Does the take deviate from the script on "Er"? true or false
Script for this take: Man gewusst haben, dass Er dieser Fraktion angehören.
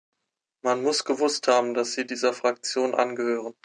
true